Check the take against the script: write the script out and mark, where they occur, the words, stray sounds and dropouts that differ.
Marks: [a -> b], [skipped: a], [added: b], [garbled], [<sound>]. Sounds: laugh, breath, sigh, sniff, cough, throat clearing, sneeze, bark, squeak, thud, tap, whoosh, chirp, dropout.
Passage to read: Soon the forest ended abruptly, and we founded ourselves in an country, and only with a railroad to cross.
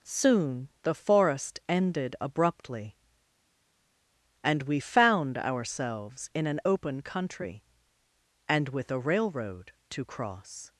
Soon the forest ended abruptly, and we [founded -> found] ourselves in an [added: open] country, and [skipped: only] with a railroad to cross.